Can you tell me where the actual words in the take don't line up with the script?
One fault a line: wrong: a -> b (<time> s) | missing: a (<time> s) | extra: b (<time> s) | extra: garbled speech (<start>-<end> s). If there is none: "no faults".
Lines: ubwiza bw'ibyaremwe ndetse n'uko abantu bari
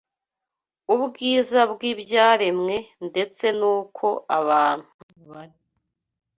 no faults